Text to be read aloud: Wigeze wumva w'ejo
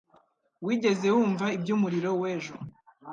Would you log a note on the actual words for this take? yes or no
yes